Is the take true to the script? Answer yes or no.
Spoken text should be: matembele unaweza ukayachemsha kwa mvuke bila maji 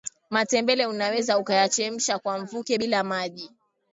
yes